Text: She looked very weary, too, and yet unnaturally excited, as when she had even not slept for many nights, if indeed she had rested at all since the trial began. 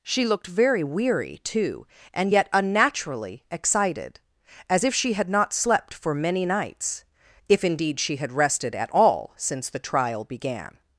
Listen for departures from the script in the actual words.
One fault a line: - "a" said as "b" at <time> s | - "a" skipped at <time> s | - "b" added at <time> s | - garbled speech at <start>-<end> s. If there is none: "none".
- "when" said as "if" at 4.8 s
- "even" skipped at 5.3 s